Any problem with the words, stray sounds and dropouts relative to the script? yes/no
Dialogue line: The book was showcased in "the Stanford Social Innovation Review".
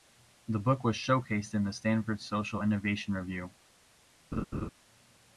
yes